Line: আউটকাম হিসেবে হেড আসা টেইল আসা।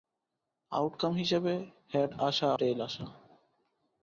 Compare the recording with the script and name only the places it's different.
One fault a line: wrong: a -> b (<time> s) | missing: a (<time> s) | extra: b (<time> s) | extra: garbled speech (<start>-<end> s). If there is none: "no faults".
no faults